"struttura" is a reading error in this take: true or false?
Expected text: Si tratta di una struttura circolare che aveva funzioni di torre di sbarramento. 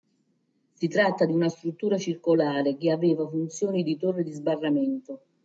false